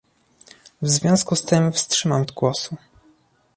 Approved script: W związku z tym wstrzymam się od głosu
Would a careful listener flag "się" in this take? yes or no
yes